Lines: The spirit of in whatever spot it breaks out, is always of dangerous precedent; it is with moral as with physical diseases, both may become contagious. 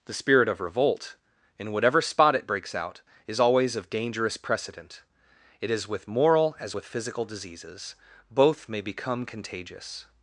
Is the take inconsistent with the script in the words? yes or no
yes